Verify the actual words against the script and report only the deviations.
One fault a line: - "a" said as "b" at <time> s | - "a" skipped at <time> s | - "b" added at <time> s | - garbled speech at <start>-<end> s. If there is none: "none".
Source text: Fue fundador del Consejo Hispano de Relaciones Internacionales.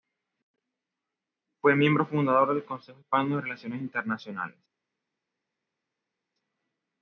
- "miembro" added at 1.8 s